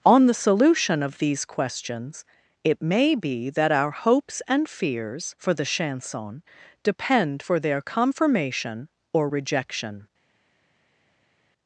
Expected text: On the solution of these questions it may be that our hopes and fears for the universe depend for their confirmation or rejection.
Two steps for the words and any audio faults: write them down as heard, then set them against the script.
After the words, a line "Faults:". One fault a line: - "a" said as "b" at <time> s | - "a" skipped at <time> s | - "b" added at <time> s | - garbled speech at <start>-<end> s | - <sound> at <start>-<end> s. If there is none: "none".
On the solution of these questions it may be that our hopes and fears for the chanson depend for their confirmation or rejection.
Faults:
- "universe" said as "chanson" at 5.6 s